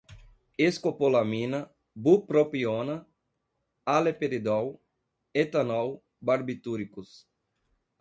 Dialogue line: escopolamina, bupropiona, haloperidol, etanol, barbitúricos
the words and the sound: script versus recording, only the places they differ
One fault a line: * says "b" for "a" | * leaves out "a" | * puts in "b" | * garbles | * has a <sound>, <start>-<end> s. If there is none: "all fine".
all fine